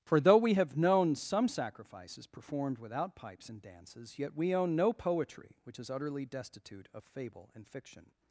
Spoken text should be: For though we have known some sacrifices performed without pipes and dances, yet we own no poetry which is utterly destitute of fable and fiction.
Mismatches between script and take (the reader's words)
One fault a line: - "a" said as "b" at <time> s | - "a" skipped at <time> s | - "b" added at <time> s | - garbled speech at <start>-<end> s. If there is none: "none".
none